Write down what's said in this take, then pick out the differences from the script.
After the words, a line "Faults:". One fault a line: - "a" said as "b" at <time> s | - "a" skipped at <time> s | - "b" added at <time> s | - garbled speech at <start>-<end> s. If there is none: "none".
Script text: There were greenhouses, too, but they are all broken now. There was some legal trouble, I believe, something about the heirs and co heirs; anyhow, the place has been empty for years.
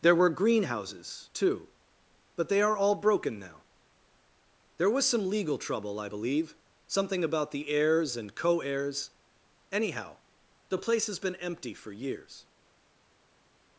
There were greenhouses, too, but they are all broken now. There was some legal trouble, I believe, something about the heirs and co heirs; anyhow, the place has been empty for years.
Faults:
none